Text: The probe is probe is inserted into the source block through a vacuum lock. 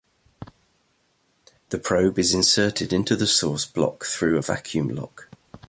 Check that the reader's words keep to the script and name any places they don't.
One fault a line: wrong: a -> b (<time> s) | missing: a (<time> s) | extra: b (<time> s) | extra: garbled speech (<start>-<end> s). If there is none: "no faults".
missing: probe is (2.3 s)